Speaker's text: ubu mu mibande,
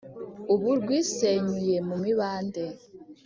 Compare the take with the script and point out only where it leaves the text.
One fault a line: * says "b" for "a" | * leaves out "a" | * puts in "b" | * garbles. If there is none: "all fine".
* puts in "rwisenyuye"